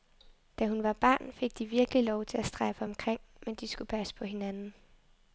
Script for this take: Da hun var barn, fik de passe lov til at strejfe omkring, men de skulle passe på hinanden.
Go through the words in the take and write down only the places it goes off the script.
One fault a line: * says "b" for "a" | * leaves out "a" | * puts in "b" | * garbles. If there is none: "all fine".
* says "virkelig" for "passe"